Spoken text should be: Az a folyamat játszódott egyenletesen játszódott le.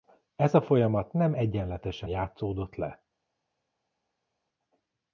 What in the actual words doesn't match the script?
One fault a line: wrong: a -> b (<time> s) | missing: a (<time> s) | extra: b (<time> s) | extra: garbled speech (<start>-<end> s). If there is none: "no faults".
wrong: Az -> Ez (0.3 s)
wrong: játszódott -> nem (1.1 s)